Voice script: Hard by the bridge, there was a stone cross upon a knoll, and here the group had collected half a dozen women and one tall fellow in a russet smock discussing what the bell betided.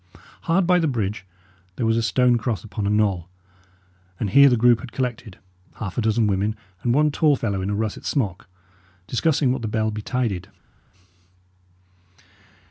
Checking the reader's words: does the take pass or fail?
pass